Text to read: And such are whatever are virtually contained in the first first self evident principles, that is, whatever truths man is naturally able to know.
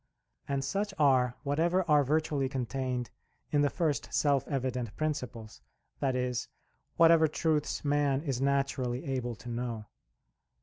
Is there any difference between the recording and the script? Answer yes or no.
yes